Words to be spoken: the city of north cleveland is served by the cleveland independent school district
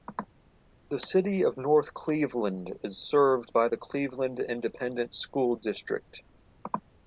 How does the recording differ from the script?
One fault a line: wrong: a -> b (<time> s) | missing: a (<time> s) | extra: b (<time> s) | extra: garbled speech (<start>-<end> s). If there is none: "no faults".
no faults